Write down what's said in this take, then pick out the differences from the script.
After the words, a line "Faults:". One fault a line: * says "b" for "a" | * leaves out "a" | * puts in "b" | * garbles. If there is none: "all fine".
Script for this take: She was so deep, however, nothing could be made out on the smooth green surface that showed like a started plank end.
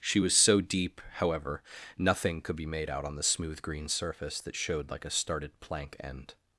She was so deep, however, nothing could be made out on the smooth green surface that showed like a started plank end.
Faults:
all fine